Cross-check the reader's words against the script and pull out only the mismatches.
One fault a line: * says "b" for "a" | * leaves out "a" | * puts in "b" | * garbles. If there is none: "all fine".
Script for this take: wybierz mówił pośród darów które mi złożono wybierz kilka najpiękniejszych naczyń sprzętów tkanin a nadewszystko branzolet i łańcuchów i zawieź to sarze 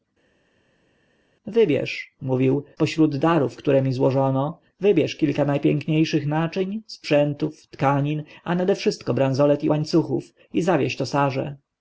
all fine